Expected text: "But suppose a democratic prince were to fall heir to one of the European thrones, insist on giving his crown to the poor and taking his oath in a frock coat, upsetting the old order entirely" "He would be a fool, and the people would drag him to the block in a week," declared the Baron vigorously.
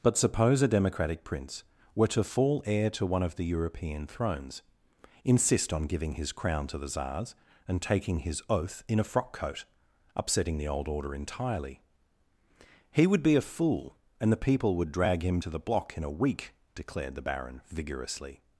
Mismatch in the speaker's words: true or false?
true